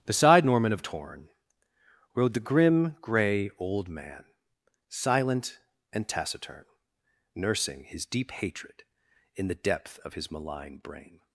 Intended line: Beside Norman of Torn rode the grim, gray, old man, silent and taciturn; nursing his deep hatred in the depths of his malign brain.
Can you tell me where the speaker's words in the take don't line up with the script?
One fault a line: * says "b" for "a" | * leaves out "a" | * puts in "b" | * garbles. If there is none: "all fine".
* says "depth" for "depths"